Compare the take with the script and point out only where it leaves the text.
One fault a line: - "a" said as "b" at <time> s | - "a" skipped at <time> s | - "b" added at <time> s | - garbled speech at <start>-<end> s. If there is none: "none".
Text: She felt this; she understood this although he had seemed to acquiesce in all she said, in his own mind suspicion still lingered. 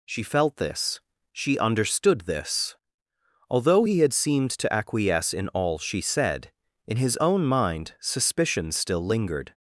none